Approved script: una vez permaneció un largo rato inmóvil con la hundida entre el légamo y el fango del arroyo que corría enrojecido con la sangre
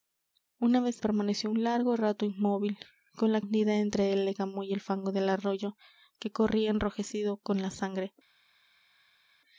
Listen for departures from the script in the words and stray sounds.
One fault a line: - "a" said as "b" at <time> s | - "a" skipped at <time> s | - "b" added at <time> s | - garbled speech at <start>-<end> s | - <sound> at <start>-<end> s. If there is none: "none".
none